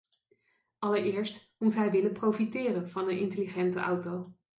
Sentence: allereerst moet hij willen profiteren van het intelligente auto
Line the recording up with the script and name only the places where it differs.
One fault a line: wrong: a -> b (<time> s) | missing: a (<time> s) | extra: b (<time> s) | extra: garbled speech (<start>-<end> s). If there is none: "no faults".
wrong: het -> een (3.1 s)